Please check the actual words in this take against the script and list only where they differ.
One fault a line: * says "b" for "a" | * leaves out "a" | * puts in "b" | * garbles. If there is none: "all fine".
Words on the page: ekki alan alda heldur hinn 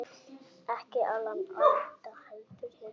all fine